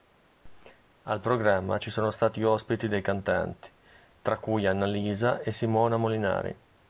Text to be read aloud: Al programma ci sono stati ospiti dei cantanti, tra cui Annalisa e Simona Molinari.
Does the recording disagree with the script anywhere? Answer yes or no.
no